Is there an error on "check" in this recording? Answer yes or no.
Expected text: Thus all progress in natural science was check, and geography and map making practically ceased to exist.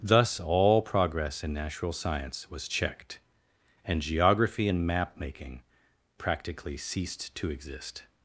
yes